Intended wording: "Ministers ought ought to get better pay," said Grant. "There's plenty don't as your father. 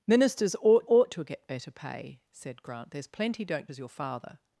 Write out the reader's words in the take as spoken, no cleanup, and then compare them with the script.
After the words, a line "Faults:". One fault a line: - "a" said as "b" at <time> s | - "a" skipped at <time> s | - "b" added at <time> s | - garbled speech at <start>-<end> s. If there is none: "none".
"Ministers ought ought to get better pay," said Grant. "There's plenty don't as your father.
Faults:
none